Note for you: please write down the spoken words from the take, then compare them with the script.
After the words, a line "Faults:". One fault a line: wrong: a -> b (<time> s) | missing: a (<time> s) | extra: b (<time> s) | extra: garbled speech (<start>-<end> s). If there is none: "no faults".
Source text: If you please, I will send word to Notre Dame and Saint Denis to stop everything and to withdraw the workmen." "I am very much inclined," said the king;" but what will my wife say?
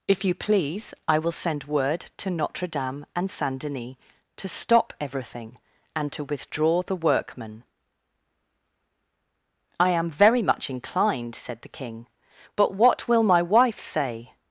If you please, I will send word to Notre Dame and Saint Denis to stop everything and to withdraw the workmen." "I am very much inclined," said the king;" but what will my wife say?
Faults:
no faults